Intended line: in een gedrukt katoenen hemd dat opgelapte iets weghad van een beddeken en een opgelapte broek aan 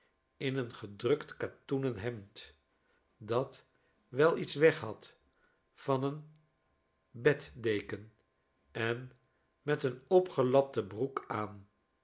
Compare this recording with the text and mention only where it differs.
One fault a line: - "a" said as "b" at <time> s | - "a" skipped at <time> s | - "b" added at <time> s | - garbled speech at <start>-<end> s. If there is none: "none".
- "opgelapte" said as "wel" at 4.1 s
- "met" added at 9.6 s